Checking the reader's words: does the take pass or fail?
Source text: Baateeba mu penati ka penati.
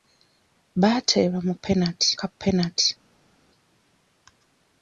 pass